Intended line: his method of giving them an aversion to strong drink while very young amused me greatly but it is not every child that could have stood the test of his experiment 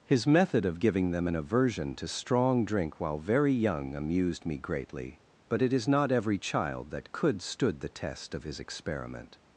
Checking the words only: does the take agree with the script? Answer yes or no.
no